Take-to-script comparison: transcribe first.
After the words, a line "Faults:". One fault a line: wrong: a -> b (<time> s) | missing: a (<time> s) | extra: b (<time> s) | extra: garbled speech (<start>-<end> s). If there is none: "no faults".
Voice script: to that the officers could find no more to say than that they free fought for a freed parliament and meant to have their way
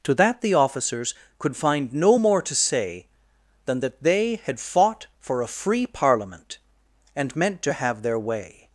to that the officers could find no more to say than that they had fought for a free parliament and meant to have their way
Faults:
wrong: free -> had (4.4 s)
wrong: freed -> free (5.5 s)